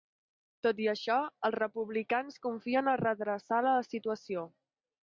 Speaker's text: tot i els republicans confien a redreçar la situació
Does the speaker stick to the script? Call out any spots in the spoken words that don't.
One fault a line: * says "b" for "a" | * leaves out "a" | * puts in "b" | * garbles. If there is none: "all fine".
* puts in "això"